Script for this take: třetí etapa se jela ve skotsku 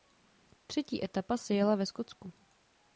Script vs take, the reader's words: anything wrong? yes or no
no